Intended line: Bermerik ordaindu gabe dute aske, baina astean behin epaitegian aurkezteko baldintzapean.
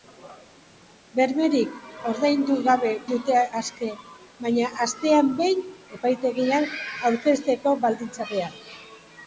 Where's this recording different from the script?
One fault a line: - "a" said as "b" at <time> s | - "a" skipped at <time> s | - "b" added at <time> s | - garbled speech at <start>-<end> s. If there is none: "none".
none